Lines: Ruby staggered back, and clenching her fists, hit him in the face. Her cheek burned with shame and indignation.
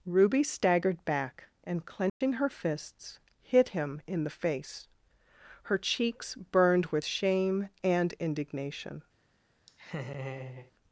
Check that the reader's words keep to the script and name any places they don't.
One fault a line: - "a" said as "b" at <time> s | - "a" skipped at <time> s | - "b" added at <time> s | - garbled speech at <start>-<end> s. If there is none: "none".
- "cheek" said as "cheeks" at 5.8 s